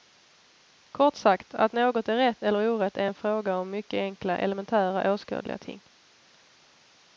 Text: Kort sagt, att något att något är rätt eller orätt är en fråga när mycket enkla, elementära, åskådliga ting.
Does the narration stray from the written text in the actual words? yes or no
yes